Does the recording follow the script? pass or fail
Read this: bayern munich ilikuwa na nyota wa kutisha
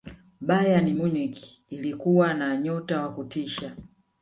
pass